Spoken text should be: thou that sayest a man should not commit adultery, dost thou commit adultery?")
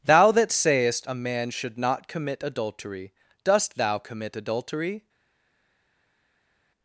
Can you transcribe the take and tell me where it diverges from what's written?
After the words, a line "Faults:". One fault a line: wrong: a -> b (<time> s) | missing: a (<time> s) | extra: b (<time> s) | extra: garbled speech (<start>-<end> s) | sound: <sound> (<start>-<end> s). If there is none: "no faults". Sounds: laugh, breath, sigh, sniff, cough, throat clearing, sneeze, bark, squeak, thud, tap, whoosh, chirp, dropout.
thou that sayest a man should not commit adultery, dost thou commit adultery?")
Faults:
no faults